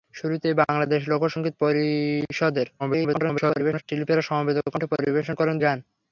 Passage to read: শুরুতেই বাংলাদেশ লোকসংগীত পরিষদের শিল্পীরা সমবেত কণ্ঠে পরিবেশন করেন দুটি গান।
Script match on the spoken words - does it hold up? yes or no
no